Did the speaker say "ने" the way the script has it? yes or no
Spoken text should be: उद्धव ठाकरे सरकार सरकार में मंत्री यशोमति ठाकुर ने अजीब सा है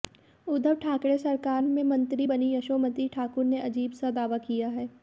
yes